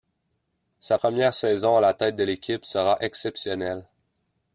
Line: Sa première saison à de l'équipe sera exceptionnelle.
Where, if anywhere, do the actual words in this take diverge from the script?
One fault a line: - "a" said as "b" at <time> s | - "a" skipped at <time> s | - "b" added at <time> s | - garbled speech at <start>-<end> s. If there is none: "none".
- "la tête" added at 1.8 s